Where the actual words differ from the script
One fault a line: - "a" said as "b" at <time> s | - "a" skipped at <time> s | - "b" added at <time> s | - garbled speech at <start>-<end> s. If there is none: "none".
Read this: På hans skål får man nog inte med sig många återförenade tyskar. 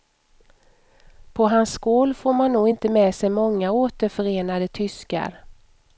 none